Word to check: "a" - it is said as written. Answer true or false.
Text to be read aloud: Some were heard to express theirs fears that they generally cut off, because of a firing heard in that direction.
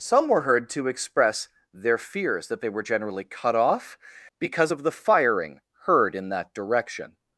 false